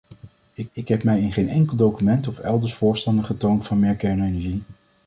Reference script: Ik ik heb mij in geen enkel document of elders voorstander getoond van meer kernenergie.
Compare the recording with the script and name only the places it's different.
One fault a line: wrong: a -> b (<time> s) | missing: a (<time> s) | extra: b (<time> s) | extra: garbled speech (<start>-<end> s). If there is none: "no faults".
no faults